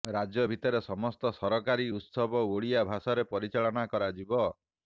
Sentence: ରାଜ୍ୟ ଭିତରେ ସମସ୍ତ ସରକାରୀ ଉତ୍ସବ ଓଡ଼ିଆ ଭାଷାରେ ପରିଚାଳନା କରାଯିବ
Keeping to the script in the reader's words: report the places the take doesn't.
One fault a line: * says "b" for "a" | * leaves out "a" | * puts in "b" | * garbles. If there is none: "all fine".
all fine